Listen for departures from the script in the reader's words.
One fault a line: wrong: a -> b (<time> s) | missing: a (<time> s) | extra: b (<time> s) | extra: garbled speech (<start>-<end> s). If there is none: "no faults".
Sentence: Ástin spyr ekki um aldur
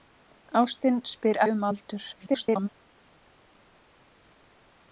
missing: ekki (1.4 s)
extra: garbled speech (2.1-2.7 s)